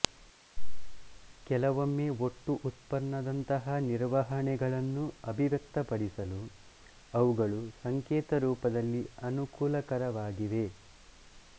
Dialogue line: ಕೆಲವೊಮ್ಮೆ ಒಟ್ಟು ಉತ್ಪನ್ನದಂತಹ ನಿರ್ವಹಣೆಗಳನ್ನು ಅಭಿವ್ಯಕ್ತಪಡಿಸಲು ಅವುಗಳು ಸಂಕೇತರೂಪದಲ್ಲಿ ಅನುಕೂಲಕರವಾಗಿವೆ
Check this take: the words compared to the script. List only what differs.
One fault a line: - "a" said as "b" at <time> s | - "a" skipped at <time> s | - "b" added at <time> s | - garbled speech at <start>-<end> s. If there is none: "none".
none